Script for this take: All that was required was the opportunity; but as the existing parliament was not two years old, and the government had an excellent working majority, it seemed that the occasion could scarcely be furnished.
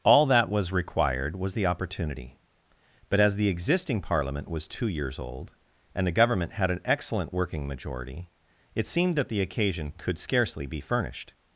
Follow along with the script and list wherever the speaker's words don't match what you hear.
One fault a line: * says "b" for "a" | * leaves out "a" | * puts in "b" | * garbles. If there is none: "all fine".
* leaves out "not"